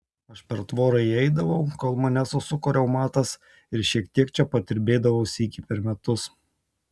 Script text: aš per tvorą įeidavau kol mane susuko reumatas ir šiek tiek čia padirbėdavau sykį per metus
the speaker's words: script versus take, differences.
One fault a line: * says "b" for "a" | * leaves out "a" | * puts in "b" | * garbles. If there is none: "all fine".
all fine